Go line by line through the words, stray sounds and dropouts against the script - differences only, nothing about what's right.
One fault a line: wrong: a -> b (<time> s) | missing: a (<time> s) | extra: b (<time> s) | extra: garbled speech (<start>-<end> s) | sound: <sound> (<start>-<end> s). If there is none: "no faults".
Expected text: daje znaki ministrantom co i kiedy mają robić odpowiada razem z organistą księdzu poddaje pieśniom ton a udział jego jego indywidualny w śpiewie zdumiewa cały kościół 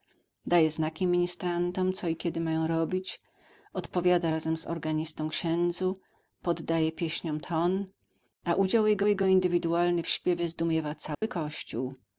sound: dropout (11.1-11.2 s)